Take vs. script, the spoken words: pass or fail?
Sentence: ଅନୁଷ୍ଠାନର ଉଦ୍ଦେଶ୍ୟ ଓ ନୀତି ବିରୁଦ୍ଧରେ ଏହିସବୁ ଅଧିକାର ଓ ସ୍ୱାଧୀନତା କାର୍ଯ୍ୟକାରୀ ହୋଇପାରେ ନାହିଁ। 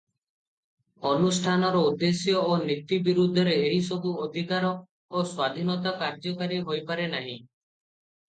pass